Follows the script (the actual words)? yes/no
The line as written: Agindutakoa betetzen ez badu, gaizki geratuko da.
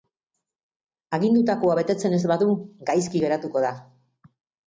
yes